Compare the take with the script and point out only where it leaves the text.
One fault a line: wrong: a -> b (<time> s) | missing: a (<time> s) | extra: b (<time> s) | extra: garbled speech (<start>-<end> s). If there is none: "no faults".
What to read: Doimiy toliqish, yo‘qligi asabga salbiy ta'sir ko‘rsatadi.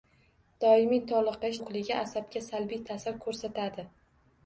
no faults